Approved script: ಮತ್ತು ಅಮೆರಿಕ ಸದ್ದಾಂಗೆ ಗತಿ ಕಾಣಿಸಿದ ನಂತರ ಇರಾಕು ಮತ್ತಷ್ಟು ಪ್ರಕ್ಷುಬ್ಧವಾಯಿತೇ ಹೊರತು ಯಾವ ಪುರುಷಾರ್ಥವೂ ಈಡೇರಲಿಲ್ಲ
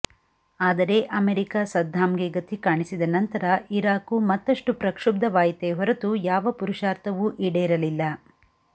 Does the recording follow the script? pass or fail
fail